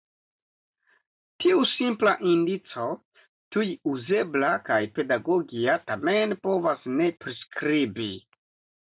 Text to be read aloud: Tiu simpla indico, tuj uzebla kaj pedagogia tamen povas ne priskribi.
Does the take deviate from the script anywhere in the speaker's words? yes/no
no